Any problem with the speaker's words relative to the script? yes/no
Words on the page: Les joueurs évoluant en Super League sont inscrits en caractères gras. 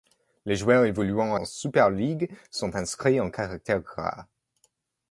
no